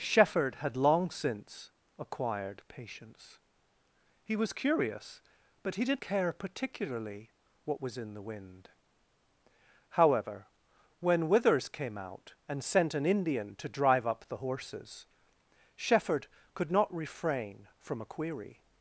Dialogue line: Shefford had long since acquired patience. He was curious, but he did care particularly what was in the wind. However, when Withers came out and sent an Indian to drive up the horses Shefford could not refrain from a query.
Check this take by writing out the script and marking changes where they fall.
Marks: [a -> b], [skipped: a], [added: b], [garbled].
Shefford had long since acquired patience. He was curious, but he did care particularly what was in the wind. However, when Withers came out and sent an Indian to drive up the horses Shefford could not refrain from a query.